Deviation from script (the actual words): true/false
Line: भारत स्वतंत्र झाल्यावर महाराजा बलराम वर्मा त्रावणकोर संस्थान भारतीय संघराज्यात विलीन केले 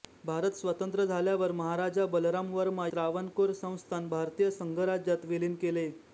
false